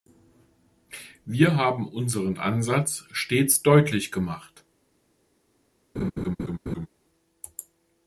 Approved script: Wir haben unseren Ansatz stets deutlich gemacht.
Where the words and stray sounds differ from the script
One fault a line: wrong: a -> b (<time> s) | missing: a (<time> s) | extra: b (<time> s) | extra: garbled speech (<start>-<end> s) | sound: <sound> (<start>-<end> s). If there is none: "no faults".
sound: laugh (5.9-6.9 s)